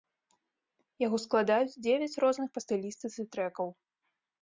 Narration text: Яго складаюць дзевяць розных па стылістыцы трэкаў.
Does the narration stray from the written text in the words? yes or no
no